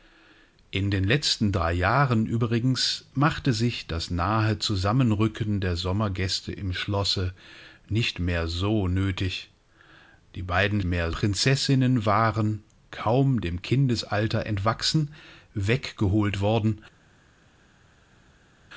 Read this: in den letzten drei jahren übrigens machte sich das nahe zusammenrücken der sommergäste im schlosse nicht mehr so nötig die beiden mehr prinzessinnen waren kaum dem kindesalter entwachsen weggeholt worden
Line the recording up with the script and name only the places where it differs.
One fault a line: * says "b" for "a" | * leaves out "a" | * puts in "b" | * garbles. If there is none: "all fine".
all fine